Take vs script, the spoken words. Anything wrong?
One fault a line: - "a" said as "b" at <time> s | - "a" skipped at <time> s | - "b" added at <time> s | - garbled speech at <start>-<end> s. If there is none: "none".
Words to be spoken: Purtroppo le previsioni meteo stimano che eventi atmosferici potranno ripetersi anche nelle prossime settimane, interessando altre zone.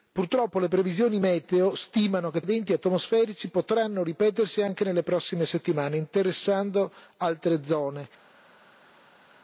none